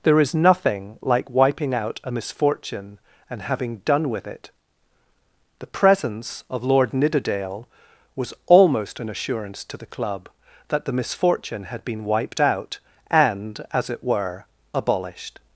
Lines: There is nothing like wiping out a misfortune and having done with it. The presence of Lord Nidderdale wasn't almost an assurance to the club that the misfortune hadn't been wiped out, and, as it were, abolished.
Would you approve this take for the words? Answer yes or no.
no